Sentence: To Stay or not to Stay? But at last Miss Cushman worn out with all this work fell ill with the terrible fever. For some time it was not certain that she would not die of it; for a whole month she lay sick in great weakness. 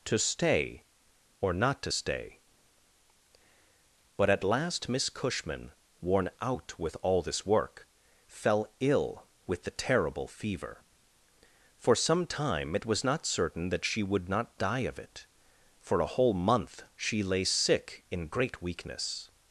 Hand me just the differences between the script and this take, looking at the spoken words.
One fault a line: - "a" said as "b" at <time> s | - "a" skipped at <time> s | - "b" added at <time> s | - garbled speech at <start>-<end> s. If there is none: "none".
none